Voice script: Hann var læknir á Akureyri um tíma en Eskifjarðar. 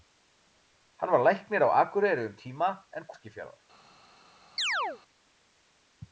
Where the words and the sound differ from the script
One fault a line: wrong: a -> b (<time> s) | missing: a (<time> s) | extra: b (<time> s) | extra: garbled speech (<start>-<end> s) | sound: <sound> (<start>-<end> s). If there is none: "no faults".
sound: chirp (4.6-5.0 s)